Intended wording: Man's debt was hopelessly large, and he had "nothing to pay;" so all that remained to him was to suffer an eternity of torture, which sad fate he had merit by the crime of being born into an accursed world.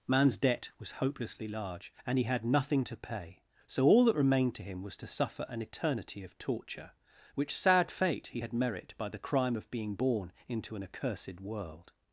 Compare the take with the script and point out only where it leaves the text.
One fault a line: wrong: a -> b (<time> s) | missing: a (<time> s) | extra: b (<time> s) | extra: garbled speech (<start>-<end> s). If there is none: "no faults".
no faults